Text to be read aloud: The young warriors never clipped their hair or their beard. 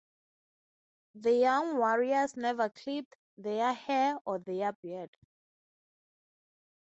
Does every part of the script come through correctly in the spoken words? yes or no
yes